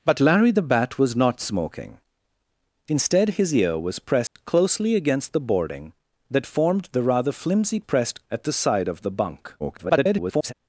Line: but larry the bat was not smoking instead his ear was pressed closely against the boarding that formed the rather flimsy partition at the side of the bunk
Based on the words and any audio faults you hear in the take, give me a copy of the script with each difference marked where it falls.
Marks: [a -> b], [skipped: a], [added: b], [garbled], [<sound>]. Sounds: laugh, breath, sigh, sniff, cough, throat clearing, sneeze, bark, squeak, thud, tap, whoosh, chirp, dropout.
but larry the bat was not smoking instead his ear was pressed [dropout] closely against the boarding that formed the rather flimsy [partition -> pressed] at the side of the bunk [garbled]